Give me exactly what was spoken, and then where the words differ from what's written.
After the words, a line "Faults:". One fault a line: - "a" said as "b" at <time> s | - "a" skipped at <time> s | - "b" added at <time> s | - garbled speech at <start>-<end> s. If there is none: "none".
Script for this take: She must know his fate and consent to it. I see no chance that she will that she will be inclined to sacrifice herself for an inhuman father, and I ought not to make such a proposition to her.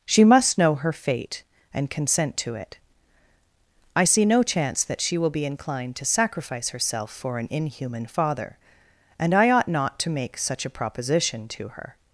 She must know her fate and consent to it. I see no chance that she will be inclined to sacrifice herself for an inhuman father, and I ought not to make such a proposition to her.
Faults:
- "his" said as "her" at 0.8 s
- "that she will" skipped at 5.3 s